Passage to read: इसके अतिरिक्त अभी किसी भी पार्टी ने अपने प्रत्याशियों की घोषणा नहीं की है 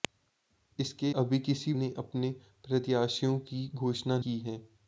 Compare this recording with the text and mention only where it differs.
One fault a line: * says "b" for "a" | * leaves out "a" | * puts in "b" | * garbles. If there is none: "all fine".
* leaves out "अतिरिक्त"
* leaves out "भी पार्टी"
* leaves out "नहीं"